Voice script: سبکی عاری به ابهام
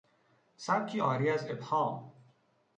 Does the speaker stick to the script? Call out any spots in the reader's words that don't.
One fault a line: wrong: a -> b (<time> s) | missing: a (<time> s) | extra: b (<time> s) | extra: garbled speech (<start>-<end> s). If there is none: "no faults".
wrong: به -> از (1.3 s)